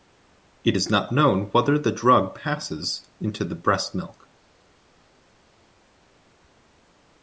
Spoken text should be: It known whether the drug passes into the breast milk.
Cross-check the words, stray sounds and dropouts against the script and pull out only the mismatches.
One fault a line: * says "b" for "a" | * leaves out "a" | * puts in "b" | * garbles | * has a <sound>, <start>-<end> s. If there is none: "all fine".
* puts in "is not"